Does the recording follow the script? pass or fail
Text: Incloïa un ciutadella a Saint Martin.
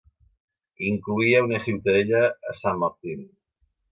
fail